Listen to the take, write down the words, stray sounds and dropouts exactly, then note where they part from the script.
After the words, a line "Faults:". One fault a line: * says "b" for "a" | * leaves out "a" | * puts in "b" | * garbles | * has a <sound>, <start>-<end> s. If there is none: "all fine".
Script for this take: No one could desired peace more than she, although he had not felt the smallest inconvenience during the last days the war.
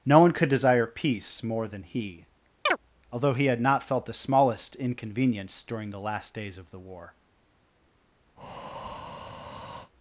No one could desire peace more than he, although he had not felt the smallest inconvenience during the last days of the war.
Faults:
* says "desire" for "desired"
* says "he" for "she"
* has a chirp, 2.7-2.8 s
* puts in "of"
* has a breath, 8.4-9.9 s